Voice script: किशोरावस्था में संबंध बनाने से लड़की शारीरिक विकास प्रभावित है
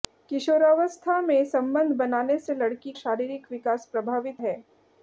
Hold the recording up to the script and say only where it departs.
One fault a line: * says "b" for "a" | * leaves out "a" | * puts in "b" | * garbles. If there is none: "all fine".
all fine